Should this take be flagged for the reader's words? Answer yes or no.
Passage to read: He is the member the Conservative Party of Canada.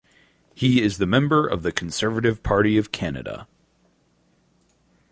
yes